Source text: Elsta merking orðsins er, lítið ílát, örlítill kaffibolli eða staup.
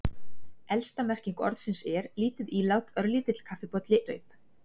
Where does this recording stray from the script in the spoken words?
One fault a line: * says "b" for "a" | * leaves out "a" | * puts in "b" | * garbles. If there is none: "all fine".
* leaves out "eða"